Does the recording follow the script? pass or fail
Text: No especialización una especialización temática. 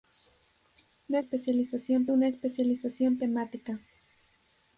pass